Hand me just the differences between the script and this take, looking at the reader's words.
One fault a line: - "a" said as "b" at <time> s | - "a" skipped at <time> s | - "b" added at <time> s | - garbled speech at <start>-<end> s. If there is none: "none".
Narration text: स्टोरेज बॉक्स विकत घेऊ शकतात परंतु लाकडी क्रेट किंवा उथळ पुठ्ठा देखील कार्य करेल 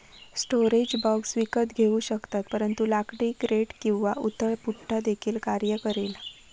none